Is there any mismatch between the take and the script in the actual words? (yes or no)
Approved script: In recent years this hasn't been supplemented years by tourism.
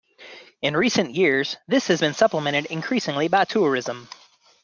yes